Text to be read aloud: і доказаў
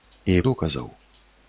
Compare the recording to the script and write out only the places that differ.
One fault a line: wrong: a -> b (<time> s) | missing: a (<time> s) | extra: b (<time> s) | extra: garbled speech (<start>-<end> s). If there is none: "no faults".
no faults